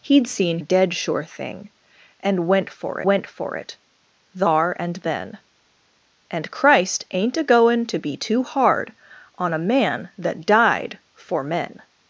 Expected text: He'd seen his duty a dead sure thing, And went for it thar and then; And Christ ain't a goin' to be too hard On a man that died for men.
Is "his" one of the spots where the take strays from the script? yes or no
yes